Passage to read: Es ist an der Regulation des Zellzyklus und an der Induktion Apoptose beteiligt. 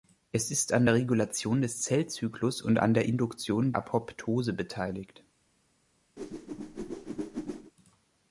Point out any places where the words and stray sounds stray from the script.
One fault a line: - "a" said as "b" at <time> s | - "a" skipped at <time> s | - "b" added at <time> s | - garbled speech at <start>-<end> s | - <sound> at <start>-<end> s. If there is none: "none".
- whoosh at 6.2-7.7 s